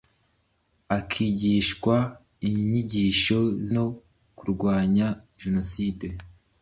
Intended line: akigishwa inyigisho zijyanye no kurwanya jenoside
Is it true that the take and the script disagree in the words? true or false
true